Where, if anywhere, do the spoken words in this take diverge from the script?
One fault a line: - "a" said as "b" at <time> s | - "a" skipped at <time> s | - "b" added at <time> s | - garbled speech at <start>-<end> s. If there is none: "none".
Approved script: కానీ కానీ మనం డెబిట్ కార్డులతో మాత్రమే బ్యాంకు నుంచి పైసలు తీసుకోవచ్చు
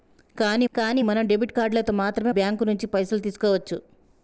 none